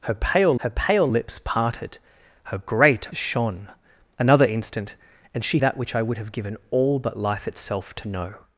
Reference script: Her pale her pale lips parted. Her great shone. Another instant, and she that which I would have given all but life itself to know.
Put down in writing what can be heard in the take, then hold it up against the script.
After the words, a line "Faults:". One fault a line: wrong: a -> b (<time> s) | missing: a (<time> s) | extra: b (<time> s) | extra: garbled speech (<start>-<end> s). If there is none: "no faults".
Her pale her pale lips parted. Her great shone. Another instant, and she that which I would have given all but life itself to know.
Faults:
no faults